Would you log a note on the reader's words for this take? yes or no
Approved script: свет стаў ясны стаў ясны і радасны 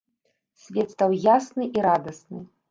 yes